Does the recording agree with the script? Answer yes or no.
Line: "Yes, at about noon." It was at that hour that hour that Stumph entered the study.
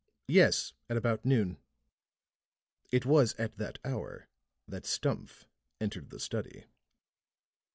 no